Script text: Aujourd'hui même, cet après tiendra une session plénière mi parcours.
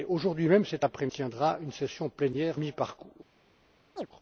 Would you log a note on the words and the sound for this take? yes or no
yes